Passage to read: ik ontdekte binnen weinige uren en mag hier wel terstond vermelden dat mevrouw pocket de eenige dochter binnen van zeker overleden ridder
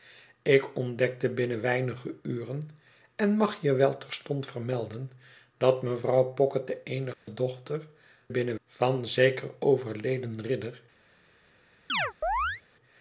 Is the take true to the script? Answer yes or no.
yes